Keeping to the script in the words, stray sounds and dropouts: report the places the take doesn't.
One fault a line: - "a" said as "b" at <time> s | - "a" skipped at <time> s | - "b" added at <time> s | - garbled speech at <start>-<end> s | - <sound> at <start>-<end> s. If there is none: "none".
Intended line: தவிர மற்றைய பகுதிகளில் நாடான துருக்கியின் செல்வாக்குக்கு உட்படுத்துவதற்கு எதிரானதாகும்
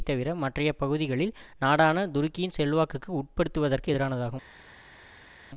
none